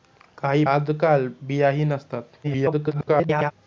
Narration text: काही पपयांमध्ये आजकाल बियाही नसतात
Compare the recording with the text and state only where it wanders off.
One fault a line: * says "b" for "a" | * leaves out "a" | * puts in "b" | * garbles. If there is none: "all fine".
* leaves out "पपयांमध्ये"
* garbles